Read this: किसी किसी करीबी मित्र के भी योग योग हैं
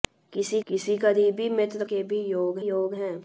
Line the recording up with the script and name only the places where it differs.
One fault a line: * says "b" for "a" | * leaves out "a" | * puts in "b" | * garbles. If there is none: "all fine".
all fine